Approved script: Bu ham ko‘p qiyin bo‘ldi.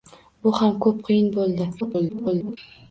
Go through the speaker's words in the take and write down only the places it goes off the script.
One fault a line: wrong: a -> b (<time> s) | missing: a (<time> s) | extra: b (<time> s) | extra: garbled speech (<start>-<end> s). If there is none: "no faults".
extra: garbled speech (1.8-2.6 s)